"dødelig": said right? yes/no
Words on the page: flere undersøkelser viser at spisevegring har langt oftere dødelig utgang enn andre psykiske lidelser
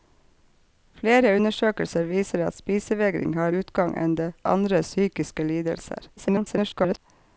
no